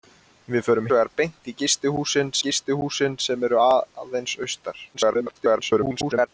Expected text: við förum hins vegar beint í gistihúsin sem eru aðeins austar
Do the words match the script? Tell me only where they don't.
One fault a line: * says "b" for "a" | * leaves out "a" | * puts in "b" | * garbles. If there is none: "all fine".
* leaves out "hins"
* puts in "gistihúsin"
* garbles